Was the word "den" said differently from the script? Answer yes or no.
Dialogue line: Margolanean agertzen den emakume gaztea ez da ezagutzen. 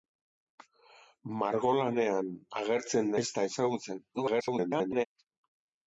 yes